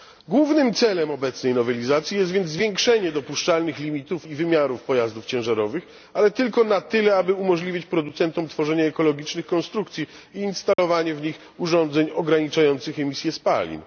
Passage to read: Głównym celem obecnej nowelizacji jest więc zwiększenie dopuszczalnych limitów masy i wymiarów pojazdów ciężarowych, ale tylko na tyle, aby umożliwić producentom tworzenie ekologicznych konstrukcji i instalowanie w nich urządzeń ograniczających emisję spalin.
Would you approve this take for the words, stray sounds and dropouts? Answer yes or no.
no